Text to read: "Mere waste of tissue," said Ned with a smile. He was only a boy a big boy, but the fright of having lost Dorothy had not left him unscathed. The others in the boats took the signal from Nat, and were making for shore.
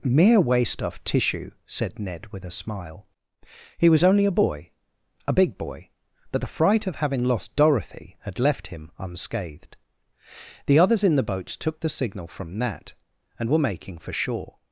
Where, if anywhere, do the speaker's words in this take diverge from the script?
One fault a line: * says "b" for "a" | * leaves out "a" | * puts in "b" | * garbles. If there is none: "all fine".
* leaves out "not"